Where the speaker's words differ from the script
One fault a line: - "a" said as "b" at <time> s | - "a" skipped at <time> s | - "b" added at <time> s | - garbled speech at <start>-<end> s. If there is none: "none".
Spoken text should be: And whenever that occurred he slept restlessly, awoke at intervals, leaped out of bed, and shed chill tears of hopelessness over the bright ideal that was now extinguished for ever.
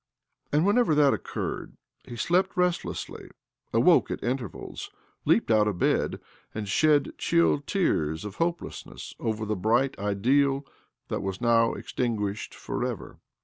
none